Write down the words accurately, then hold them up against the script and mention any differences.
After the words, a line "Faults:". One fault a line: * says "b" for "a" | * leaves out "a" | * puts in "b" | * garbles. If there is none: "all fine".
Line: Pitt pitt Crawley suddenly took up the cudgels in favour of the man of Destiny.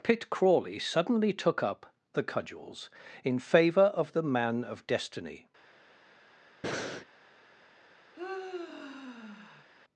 Pitt Crawley suddenly took up the cudgels in favour of the man of Destiny.
Faults:
* leaves out "pitt"